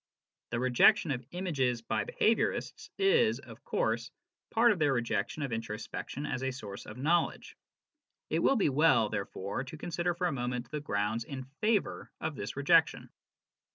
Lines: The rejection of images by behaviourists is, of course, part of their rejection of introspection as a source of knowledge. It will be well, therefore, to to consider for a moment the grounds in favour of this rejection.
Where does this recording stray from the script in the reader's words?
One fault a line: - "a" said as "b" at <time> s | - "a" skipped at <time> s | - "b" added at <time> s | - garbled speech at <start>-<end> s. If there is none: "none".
- "to" skipped at 9.8 s